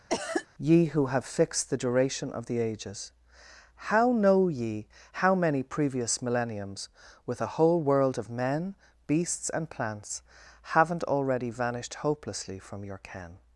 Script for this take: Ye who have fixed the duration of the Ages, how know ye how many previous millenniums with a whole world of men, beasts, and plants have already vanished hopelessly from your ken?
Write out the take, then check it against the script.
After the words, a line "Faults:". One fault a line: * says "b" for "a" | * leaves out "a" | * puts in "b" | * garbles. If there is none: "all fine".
Ye who have fixed the duration of the Ages, how know ye how many previous millenniums with a whole world of men, beasts, and plants haven't already vanished hopelessly from your ken?
Faults:
* says "haven't" for "have"